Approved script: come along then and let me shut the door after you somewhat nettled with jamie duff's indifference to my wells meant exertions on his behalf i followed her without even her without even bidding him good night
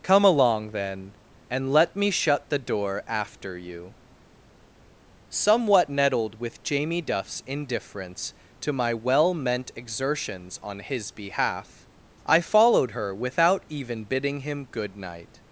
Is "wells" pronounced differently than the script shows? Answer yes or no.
yes